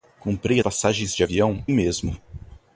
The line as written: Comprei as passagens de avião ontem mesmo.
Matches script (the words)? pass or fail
fail